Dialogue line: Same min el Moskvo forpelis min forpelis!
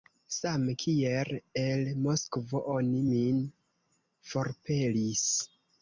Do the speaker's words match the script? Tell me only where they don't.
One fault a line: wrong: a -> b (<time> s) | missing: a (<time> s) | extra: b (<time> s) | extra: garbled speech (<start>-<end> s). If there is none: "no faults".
wrong: min -> kiel (0.8 s)
wrong: forpelis -> oni (2.8 s)